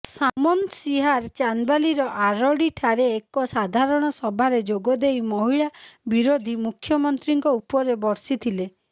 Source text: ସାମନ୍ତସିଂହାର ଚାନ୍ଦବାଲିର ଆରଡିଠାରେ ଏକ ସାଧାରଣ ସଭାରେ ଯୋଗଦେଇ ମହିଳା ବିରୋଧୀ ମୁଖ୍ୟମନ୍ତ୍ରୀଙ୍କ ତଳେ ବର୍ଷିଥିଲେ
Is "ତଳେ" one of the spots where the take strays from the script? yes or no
yes